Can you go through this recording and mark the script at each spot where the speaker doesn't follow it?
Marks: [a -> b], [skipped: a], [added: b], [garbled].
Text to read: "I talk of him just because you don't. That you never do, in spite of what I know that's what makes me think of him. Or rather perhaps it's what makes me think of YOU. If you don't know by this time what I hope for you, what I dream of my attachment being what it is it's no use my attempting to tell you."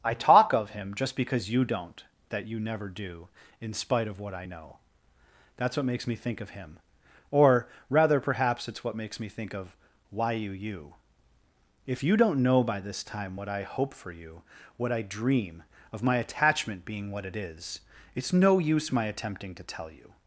"I talk of him just because you don't. That you never do, in spite of what I know that's what makes me think of him. Or rather perhaps it's what makes me think of [added: why you] YOU. If you don't know by this time what I hope for you, what I dream of my attachment being what it is it's no use my attempting to tell you."